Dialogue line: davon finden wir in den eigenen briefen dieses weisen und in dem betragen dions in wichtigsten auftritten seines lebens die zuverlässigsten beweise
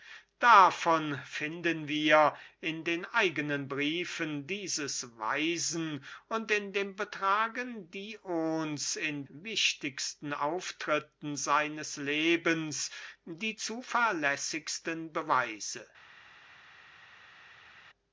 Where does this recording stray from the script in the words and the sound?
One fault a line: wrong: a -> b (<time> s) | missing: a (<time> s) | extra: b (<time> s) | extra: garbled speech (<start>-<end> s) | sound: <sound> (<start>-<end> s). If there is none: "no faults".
no faults